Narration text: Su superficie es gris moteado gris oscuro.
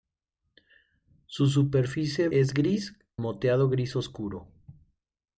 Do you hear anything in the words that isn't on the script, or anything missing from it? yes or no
no